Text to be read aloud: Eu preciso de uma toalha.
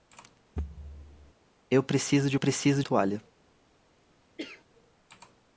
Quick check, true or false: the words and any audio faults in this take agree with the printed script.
false